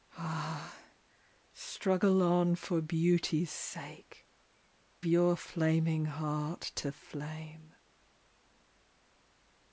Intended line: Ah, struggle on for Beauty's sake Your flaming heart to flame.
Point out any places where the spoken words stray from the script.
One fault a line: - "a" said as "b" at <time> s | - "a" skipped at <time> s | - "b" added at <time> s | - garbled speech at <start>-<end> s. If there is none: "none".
none